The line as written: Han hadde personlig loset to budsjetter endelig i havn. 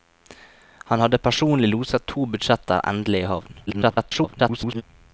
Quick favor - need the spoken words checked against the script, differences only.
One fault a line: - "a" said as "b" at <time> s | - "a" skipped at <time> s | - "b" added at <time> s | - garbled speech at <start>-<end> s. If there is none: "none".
- garbled speech at 3.7-4.8 s